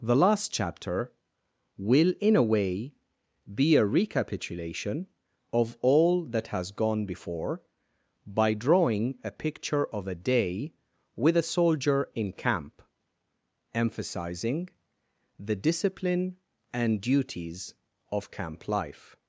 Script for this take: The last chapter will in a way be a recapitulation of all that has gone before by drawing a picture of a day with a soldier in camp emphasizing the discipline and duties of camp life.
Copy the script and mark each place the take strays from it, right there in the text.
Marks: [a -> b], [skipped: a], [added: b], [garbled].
The last chapter will in a way be a recapitulation of all that has gone before by drawing a picture of a day with a soldier in camp emphasizing the discipline and duties of camp life.